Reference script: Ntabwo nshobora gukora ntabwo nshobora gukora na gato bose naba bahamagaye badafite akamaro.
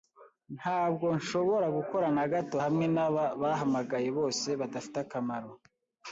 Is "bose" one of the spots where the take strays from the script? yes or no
yes